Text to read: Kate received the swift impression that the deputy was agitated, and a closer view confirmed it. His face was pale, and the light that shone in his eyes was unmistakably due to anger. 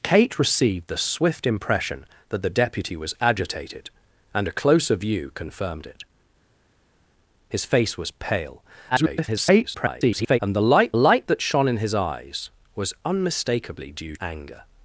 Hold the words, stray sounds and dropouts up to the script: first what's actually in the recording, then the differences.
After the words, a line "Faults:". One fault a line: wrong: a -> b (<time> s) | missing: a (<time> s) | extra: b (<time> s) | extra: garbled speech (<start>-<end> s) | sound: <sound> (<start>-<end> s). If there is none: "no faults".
Kate received the swift impression that the deputy was agitated, and a closer view confirmed it. His face was pale, [garbled] and the light light that shone in his eyes was unmistakably due anger.
Faults:
extra: garbled speech (8.9-10.4 s)
extra: light (10.9 s)
missing: to (14.2 s)